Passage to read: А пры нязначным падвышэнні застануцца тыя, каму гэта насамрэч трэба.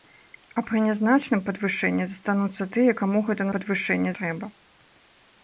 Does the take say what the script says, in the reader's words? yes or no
no